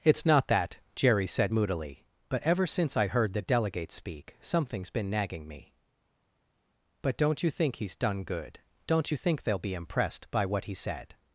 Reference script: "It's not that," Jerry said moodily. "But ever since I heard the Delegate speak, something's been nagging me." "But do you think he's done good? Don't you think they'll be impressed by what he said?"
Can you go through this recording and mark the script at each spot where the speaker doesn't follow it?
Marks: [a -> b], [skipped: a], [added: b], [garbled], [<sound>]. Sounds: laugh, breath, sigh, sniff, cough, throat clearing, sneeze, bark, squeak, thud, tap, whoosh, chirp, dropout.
"It's not that," Jerry said moodily. "But ever since I heard the Delegate speak, something's been nagging me." "But [do -> don't] you think he's done good? Don't you think they'll be impressed by what he said?"